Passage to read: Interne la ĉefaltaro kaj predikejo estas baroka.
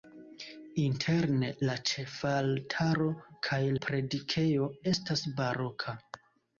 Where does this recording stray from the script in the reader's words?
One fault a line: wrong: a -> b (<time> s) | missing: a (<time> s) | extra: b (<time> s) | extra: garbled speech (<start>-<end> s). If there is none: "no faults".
no faults